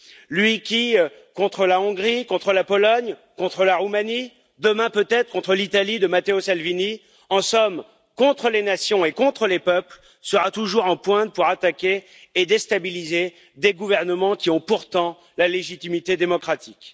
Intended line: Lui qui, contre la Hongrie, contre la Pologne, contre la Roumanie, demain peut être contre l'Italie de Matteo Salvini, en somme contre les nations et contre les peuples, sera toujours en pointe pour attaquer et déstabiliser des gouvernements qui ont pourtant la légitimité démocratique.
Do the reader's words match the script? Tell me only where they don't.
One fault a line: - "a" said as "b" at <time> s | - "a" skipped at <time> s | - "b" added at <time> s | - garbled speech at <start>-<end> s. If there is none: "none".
none